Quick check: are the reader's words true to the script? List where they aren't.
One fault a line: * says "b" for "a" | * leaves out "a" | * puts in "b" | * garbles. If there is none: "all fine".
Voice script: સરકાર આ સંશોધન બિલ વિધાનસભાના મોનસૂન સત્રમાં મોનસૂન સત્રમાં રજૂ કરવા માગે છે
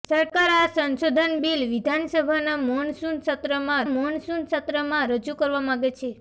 all fine